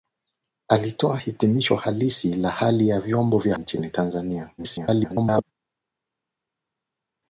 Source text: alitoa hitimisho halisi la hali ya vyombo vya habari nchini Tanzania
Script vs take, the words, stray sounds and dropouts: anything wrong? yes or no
yes